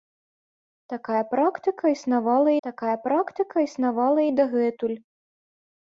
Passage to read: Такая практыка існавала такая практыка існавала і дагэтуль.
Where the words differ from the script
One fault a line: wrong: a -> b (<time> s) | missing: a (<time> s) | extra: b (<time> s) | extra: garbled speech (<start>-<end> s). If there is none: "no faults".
no faults